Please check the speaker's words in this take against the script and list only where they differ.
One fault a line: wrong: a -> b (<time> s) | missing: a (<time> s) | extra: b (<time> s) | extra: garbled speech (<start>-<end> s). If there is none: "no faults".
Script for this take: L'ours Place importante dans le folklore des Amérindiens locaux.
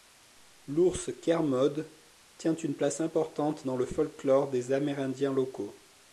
extra: Kermode tient une (1.2 s)